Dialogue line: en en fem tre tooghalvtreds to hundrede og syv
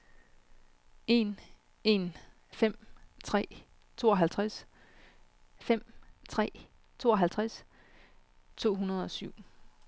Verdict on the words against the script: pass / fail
fail